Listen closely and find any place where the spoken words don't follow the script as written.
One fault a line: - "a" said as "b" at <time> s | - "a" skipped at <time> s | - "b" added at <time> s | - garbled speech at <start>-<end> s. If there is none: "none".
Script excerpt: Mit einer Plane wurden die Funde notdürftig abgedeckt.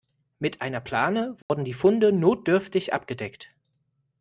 none